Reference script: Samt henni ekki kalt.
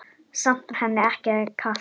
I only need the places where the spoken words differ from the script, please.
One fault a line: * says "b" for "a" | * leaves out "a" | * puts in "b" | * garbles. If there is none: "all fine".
all fine